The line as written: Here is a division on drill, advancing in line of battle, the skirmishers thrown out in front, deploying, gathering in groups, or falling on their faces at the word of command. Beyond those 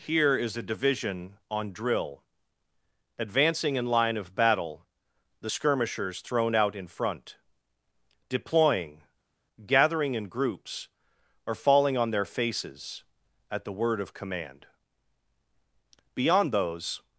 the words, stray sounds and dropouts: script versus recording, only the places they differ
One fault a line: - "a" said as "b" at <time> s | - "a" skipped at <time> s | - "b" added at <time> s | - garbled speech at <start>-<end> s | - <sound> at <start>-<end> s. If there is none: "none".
none